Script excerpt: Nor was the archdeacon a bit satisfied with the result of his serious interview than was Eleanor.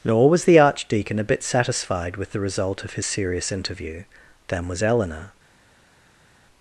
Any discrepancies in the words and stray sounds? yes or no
no